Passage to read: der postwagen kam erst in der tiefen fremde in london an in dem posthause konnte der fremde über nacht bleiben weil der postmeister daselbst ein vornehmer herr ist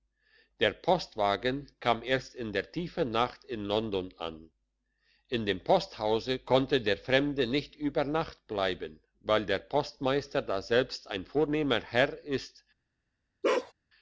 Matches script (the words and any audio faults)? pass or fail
fail